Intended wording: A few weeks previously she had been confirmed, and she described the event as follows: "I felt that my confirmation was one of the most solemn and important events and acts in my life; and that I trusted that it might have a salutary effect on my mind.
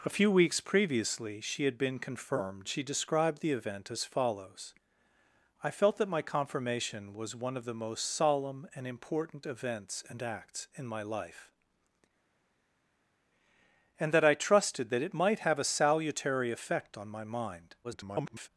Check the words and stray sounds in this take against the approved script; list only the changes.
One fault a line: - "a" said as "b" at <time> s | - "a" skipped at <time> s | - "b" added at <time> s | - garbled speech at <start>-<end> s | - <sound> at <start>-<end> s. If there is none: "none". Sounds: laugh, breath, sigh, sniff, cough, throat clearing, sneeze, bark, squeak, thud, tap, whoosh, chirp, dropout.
- "and" skipped at 2.7 s
- garbled speech at 17.8-18.5 s